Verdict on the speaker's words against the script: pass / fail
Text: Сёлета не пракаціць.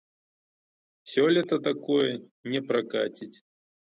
fail